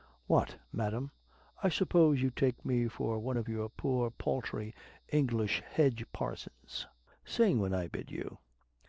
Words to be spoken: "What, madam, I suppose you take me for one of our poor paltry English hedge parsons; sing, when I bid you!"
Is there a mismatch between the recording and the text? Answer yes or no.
yes